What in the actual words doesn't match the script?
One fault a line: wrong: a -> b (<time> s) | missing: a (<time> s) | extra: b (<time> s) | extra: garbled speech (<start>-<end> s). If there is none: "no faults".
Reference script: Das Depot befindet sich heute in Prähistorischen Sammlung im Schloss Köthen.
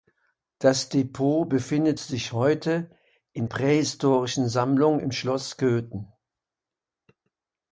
no faults